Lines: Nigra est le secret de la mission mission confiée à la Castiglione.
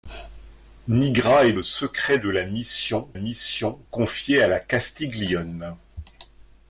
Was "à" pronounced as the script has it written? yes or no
yes